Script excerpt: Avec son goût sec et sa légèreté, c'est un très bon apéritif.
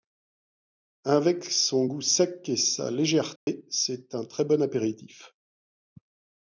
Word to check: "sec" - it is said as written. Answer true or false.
true